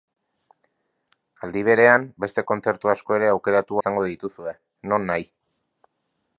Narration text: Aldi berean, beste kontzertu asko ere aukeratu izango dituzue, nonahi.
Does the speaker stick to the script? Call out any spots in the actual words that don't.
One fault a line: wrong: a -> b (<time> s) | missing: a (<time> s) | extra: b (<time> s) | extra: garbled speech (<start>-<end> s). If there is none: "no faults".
no faults